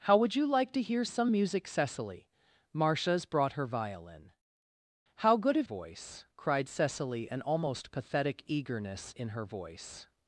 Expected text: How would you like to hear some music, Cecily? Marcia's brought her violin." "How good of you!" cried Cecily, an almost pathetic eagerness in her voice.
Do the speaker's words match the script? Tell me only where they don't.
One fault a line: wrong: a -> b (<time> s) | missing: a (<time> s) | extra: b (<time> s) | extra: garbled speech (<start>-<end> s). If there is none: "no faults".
wrong: you -> voice (5.6 s)